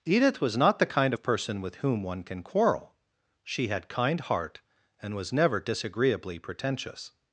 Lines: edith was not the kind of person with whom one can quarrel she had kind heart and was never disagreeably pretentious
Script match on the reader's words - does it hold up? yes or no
yes